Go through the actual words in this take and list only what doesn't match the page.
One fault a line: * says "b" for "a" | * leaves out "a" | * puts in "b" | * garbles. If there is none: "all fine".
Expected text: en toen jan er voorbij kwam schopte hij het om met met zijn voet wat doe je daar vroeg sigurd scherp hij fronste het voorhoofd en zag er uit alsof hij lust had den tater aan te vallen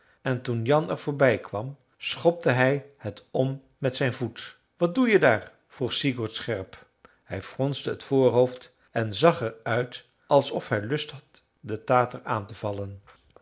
* leaves out "met"